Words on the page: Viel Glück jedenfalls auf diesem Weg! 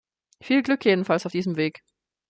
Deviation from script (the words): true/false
false